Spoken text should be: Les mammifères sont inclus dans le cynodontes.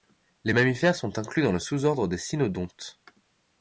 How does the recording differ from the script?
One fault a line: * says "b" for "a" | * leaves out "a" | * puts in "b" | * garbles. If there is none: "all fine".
* puts in "sous ordre des"